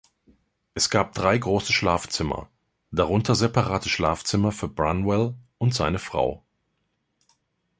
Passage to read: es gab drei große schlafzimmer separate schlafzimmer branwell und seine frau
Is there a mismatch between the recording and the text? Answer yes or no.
yes